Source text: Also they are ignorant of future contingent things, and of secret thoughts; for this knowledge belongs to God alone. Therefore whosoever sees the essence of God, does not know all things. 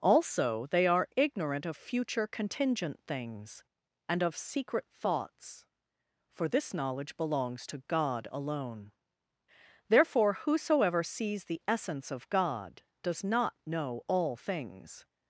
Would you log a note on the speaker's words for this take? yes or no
no